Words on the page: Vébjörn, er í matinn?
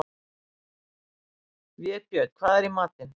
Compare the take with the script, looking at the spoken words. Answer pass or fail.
fail